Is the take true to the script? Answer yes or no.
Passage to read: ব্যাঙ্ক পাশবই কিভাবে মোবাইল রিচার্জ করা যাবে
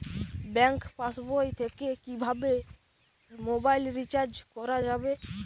no